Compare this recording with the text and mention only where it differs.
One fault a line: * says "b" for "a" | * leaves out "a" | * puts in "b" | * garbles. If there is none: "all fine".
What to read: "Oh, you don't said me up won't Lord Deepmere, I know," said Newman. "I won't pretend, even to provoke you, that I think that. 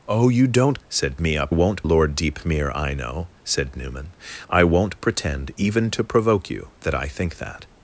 all fine